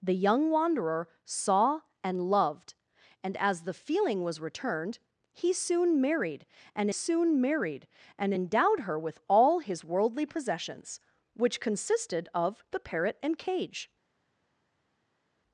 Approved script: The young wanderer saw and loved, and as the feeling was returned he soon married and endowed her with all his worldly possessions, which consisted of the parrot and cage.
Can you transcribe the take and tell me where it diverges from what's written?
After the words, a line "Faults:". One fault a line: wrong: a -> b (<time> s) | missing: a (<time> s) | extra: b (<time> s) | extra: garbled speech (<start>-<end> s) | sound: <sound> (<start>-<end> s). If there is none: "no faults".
The young wanderer saw and loved, and as the feeling was returned he soon married and soon married and endowed her with all his worldly possessions, which consisted of the parrot and cage.
Faults:
extra: soon married and (6.9 s)